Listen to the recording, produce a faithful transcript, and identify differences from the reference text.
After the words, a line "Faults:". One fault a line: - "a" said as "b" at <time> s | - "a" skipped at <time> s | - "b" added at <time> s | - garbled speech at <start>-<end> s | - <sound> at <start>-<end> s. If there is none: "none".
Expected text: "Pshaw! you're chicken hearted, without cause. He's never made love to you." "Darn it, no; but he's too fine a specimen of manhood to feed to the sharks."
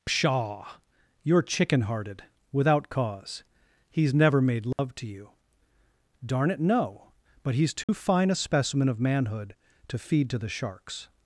"Pshaw! you're chicken hearted, without cause. He's never made love to you." "Darn it, no; but he's too fine a specimen of manhood to feed to the sharks."
Faults:
- dropout at 4.7-4.8 s
- dropout at 7.8-7.9 s